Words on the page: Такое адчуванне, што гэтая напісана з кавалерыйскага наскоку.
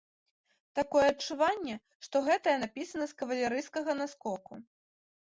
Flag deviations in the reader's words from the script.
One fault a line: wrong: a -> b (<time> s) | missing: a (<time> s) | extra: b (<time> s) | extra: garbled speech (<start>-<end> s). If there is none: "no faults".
no faults